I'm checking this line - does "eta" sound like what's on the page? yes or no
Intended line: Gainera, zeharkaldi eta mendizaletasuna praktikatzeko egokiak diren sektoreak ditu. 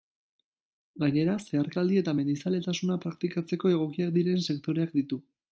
yes